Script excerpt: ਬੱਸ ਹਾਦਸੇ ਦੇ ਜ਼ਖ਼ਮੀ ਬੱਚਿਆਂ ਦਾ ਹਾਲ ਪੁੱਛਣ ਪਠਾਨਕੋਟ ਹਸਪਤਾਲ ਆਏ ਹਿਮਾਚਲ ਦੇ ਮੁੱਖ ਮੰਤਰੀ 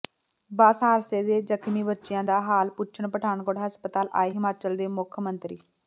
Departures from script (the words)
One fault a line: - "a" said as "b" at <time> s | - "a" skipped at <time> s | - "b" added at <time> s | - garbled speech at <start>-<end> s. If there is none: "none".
none